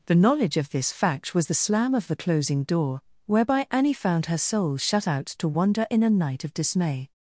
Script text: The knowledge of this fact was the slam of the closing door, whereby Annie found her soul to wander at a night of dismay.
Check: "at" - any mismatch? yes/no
yes